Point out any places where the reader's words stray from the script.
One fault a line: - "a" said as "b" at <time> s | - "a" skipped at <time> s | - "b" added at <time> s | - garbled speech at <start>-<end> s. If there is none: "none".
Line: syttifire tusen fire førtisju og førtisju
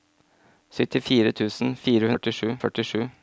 none